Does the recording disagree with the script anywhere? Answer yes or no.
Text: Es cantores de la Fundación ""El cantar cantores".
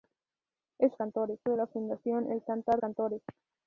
no